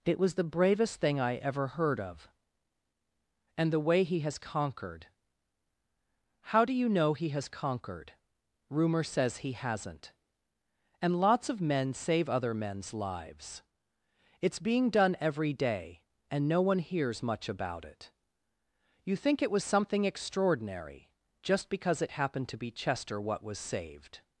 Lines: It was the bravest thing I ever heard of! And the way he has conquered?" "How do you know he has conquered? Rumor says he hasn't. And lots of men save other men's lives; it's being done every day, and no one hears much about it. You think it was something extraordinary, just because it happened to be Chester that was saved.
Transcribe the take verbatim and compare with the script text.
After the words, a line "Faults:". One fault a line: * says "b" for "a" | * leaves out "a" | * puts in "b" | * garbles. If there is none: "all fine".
It was the bravest thing I ever heard of! And the way he has conquered?" "How do you know he has conquered? Rumor says he hasn't. And lots of men save other men's lives; it's being done every day, and no one hears much about it. You think it was something extraordinary, just because it happened to be Chester what was saved.
Faults:
* says "what" for "that"